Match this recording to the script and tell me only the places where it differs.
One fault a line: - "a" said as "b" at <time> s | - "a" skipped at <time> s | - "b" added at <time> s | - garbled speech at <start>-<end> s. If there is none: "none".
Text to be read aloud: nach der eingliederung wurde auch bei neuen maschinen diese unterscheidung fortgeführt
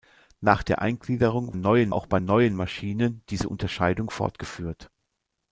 - "wurde" said as "neuen" at 1.5 s